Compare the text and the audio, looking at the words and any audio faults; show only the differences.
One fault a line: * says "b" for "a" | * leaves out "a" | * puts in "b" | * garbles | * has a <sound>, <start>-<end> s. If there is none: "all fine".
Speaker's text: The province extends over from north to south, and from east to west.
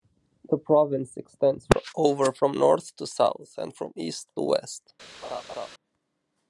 * has a laugh, 5.2-5.7 s